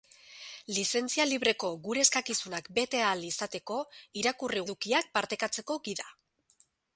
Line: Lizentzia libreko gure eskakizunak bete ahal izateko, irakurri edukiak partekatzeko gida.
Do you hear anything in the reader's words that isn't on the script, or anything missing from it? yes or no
no